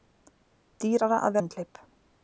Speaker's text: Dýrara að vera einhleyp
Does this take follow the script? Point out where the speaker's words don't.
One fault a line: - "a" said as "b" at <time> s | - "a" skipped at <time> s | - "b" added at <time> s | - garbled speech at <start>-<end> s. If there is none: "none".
- "vera" skipped at 1.4 s